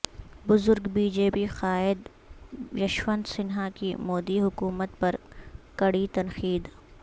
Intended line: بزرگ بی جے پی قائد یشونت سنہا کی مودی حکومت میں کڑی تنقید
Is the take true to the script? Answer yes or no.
no